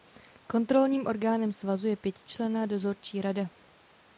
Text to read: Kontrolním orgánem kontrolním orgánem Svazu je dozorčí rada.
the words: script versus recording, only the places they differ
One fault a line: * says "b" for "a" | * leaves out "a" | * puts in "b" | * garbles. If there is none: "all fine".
* leaves out "kontrolním orgánem"
* puts in "pětičlenná"